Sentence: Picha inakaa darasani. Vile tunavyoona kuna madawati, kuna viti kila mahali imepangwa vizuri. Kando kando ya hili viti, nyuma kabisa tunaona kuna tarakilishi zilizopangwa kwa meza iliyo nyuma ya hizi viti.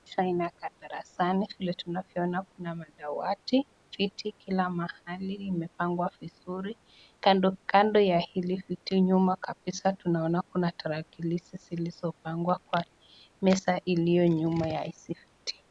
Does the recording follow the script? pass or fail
fail